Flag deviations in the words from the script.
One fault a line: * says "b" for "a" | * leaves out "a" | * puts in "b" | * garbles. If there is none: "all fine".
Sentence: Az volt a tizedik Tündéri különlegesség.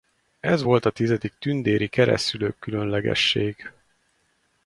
* says "Ez" for "Az"
* puts in "keresztszülők"